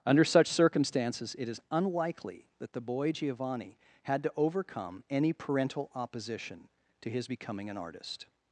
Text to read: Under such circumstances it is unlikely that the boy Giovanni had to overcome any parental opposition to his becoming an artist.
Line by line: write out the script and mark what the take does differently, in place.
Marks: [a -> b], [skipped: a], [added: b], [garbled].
Under such circumstances it is unlikely that the boy Giovanni had to overcome any parental opposition to his becoming an artist.